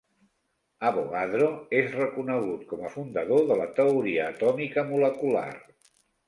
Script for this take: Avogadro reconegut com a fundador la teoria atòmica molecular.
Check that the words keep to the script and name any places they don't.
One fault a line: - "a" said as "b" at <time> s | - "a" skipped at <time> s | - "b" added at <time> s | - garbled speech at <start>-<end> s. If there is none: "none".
- "és" added at 1.8 s
- "de" added at 3.5 s